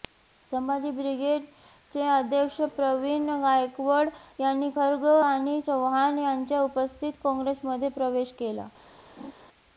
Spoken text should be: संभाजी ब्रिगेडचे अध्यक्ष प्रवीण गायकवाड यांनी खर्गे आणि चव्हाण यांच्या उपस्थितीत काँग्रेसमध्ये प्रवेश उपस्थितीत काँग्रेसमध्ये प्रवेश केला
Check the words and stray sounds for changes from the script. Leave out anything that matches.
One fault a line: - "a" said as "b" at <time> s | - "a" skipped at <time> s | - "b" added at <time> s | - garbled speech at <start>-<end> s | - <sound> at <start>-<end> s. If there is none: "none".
- "उपस्थितीत काँग्रेसमध्ये प्रवेश" skipped at 8.3 s
- laugh at 9.2-9.3 s